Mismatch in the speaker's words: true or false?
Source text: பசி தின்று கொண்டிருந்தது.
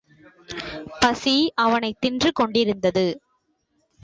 true